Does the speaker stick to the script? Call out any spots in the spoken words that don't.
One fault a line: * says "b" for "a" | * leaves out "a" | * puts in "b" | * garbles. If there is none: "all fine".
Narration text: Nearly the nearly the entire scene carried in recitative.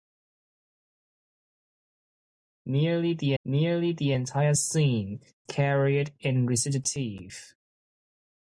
all fine